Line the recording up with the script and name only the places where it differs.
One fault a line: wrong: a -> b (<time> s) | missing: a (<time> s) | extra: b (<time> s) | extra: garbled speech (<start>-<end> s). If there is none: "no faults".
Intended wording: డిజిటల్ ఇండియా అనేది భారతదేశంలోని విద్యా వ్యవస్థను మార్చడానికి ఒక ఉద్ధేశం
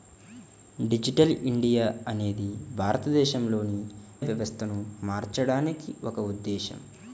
missing: విద్యా (3.8 s)